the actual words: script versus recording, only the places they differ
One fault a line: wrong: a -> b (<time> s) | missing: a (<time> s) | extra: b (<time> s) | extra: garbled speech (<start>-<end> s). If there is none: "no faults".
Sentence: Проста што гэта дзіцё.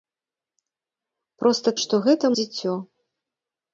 no faults